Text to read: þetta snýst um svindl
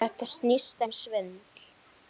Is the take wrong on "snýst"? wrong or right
right